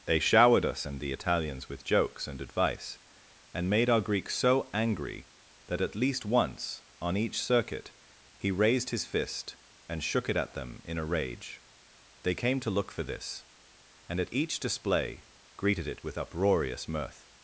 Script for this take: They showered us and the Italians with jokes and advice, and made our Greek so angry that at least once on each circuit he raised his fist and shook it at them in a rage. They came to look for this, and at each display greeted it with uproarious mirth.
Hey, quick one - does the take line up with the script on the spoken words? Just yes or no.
yes